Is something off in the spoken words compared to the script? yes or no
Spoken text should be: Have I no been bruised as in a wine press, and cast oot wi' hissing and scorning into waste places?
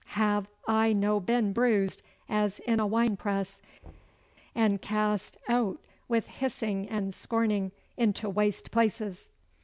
no